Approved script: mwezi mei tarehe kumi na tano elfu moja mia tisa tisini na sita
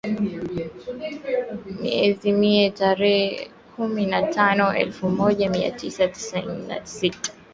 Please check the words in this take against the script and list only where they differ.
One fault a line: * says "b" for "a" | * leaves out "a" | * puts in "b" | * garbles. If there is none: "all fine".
all fine